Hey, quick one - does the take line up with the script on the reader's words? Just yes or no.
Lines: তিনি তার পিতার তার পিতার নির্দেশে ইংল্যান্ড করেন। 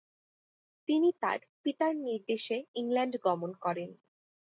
no